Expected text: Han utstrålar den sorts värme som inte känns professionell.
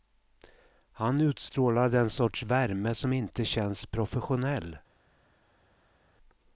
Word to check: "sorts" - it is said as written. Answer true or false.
true